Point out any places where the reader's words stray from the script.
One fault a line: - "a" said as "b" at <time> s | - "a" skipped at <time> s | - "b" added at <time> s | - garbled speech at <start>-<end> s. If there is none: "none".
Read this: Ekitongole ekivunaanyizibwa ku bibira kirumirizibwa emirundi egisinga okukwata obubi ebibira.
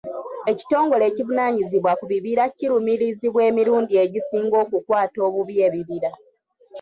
none